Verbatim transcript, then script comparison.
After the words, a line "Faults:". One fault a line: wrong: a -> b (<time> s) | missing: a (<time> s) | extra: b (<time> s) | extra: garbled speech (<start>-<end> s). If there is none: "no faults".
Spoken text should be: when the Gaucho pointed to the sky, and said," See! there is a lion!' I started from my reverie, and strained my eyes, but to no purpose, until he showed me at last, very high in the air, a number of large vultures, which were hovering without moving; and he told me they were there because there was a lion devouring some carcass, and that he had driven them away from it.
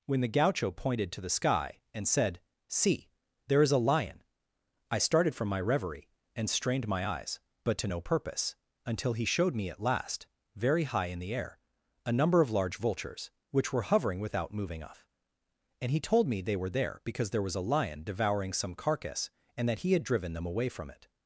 when the Gaucho pointed to the sky, and said," See! there is a lion!' I started from my reverie, and strained my eyes, but to no purpose, until he showed me at last, very high in the air, a number of large vultures, which were hovering without moving; off and he told me they were there because there was a lion devouring some carcass, and that he had driven them away from it.
Faults:
extra: off (14.8 s)